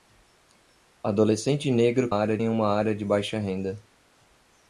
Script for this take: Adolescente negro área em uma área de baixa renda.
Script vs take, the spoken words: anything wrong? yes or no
no